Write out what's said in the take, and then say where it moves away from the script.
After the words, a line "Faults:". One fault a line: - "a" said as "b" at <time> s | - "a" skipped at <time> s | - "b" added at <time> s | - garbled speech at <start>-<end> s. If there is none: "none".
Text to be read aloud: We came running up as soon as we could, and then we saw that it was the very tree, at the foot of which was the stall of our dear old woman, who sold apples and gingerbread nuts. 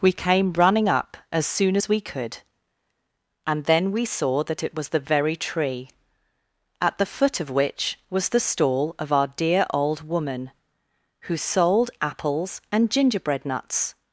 We came running up as soon as we could, and then we saw that it was the very tree, at the foot of which was the stall of our dear old woman, who sold apples and gingerbread nuts.
Faults:
none